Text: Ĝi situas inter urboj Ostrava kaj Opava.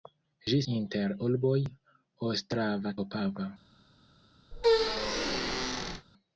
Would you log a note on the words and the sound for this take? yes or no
yes